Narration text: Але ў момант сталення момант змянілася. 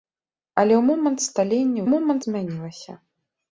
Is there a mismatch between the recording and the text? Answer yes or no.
no